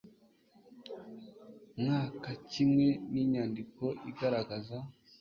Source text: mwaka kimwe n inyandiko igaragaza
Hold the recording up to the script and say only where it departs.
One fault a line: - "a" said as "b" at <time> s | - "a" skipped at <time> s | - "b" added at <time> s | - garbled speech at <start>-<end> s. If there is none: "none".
none